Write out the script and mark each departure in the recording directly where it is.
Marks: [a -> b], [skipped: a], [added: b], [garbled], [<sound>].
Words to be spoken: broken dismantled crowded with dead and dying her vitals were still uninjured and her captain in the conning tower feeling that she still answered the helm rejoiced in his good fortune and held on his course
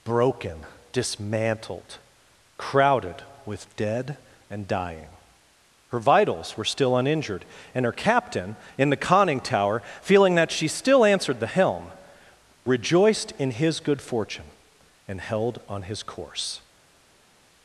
broken dismantled crowded with dead and dying her vitals were still uninjured and her captain in the conning tower feeling that she still answered the helm rejoiced in his good fortune and held on his course